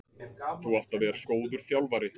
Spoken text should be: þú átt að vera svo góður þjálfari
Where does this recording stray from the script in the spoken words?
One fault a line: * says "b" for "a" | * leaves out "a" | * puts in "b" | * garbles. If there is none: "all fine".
* leaves out "svo"